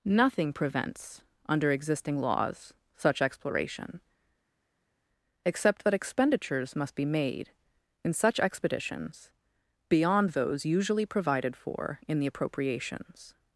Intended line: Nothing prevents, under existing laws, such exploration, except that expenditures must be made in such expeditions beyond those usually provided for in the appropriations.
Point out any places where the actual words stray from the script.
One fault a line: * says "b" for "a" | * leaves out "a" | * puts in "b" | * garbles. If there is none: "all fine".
all fine